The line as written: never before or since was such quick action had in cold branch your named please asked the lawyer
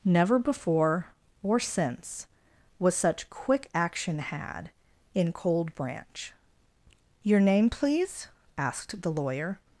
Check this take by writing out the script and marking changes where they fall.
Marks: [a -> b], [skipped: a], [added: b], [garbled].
never before or since was such quick action had in cold branch your [named -> name] please asked the lawyer